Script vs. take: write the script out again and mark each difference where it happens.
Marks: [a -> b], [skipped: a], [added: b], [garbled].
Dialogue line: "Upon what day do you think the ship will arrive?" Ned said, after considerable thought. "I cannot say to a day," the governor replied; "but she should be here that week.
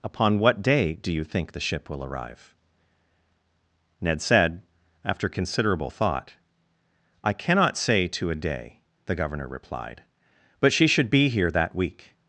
"Upon what day do you think the ship will arrive?" Ned said, after considerable thought. "I cannot say to a day," the governor replied; "but she should be here that week.